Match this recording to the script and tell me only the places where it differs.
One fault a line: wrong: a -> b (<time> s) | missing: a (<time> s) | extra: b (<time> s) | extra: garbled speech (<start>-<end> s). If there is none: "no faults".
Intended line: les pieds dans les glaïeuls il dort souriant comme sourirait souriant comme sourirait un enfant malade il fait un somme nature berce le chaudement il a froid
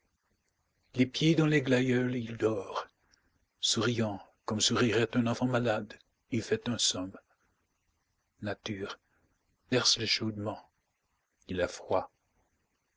missing: souriant comme sourirait (5.2 s)